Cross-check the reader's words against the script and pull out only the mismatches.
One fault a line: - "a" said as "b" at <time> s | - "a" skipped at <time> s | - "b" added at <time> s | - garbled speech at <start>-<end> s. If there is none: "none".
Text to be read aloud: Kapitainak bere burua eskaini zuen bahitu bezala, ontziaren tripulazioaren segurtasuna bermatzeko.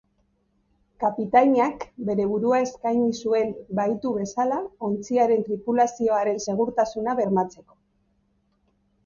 none